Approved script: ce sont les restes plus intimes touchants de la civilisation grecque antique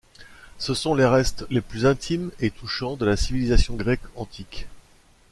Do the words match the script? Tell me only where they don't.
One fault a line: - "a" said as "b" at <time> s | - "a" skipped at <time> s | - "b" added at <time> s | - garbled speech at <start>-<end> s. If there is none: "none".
- "les" added at 1.5 s
- "et" added at 2.4 s